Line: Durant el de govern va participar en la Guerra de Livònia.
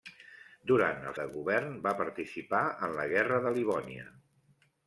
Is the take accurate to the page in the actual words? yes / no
yes